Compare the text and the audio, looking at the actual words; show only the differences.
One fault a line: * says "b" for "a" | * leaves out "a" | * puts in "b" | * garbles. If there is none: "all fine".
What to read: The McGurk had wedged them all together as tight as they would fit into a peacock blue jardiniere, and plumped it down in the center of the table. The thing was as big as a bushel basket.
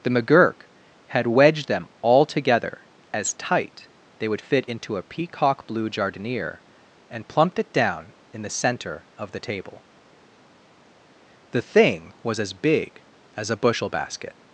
* leaves out "as"